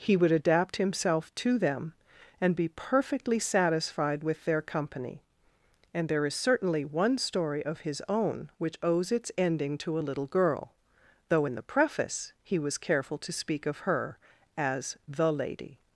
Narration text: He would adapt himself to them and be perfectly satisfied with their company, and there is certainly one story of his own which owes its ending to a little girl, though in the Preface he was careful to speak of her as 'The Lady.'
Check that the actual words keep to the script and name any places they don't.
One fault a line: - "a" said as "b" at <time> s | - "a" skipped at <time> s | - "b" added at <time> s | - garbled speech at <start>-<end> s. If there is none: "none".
none